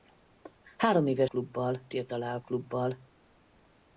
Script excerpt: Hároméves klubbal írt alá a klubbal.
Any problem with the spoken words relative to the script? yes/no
no